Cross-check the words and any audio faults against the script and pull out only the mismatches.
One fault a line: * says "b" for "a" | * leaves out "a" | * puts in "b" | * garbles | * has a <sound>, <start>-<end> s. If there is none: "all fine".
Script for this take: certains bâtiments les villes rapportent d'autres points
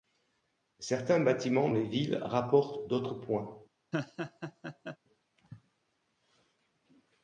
* has a laugh, 3.9-5.0 s